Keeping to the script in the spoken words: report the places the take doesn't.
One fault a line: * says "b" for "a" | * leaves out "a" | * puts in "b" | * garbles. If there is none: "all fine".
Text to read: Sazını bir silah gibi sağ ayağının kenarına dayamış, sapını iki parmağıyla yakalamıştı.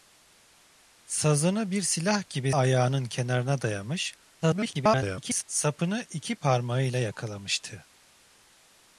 * leaves out "sağ"
* garbles